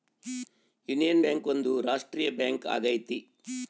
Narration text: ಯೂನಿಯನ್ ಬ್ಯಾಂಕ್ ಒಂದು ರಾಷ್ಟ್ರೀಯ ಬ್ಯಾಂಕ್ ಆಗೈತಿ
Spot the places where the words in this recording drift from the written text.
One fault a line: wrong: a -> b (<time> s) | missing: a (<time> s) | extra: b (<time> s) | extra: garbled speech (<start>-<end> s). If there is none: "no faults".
no faults